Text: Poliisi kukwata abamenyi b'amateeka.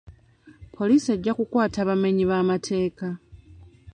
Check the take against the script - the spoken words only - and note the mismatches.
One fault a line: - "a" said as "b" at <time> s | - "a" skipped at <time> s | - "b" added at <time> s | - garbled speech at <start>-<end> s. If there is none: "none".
- "ejja" added at 1.1 s